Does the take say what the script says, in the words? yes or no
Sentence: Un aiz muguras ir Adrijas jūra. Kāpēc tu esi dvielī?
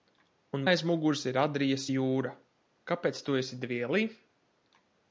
yes